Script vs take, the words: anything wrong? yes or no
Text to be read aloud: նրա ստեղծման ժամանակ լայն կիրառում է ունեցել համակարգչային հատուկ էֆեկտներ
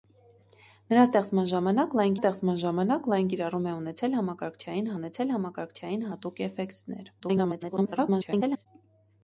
yes